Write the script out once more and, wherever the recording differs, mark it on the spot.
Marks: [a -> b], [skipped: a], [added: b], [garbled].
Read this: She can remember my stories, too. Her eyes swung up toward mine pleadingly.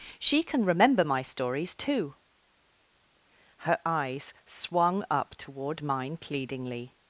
She can remember my stories, too. Her eyes swung up toward mine pleadingly.